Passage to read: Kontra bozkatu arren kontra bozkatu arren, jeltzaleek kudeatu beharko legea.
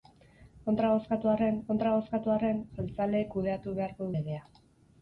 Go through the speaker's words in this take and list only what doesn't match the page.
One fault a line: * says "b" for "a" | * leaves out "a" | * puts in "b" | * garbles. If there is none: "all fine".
all fine